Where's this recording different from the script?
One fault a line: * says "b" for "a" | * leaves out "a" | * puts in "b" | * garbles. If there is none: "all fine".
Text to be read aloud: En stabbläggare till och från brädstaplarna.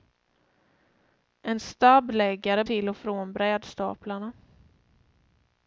all fine